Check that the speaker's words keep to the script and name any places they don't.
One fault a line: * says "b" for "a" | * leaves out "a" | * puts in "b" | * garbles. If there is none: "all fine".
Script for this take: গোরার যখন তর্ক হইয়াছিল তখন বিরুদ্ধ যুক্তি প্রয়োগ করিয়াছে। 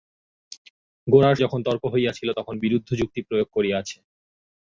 all fine